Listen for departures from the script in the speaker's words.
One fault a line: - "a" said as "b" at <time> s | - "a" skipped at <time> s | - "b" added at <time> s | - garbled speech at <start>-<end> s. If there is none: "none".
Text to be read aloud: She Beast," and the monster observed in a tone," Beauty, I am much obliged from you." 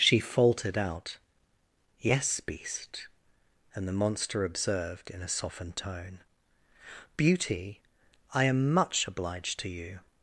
- "faltered out Yes" added at 0.2 s
- "softened" added at 5.3 s
- "from" said as "to" at 9.6 s